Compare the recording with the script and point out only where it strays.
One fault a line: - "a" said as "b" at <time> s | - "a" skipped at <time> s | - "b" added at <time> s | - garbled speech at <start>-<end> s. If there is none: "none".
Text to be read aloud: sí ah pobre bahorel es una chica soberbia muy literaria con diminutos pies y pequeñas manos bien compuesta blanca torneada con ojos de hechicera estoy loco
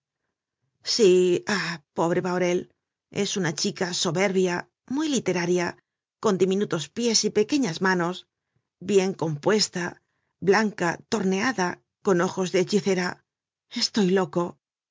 none